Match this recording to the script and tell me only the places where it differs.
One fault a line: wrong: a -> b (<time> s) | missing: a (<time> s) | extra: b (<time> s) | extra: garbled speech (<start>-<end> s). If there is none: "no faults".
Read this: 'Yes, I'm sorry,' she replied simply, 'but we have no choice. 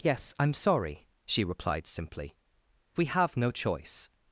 missing: but (2.4 s)